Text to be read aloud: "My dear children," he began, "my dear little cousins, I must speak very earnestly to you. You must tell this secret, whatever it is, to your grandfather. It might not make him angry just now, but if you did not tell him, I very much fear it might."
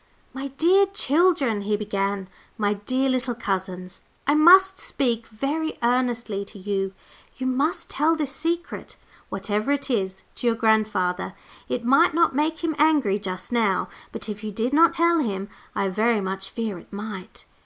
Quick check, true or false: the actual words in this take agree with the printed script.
true